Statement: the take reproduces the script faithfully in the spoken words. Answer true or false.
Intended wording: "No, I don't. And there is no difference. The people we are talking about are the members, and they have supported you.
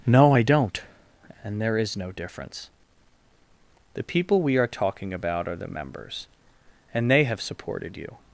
true